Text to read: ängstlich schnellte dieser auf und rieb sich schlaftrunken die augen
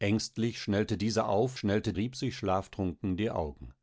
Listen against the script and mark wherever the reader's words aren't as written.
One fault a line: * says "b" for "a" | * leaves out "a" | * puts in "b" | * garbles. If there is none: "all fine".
* says "schnellte" for "und"